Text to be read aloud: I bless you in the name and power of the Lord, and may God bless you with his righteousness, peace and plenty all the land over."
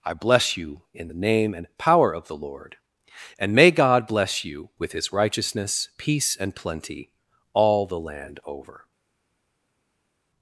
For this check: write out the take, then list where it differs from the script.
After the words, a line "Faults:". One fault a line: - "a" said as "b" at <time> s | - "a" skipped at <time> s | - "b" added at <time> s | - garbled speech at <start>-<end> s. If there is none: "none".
I bless you in the name and power of the Lord, and may God bless you with his righteousness, peace and plenty all the land over."
Faults:
none